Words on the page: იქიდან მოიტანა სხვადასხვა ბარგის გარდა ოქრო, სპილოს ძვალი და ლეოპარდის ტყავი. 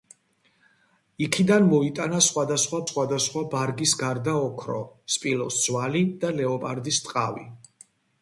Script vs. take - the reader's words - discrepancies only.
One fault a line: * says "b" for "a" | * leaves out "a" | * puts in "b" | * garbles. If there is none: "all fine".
* puts in "სხვადასხვა"